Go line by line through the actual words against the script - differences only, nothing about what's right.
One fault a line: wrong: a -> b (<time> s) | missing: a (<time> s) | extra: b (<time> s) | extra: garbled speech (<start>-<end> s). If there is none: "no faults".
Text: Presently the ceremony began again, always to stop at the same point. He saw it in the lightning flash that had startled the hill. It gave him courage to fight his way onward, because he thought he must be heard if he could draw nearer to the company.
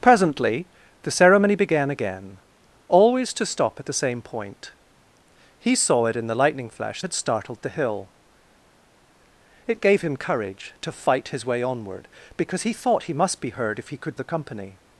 missing: that (7.0 s)
missing: draw nearer to (14.2 s)